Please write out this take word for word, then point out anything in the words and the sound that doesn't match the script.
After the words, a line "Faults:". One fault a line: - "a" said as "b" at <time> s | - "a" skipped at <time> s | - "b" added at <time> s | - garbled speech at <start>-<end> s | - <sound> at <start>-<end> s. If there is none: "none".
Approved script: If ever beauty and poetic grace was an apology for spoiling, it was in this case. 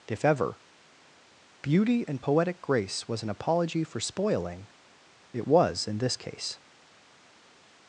If ever beauty and poetic grace was an apology for spoiling, it was in this case.
Faults:
none